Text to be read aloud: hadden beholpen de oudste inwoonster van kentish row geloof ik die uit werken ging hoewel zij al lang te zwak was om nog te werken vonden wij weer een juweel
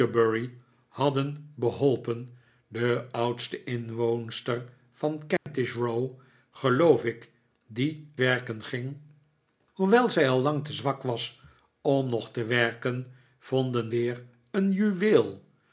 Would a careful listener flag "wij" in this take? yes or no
yes